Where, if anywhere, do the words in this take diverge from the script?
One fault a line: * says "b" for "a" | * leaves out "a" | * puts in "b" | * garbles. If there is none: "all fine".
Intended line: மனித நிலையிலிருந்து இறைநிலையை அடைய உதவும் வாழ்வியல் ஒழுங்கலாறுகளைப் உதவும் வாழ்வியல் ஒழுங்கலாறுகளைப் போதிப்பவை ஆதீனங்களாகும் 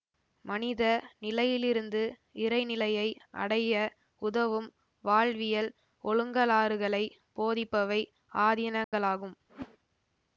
* leaves out "உதவும் வாழ்வியல் ஒழுங்கலாறுகளைப்"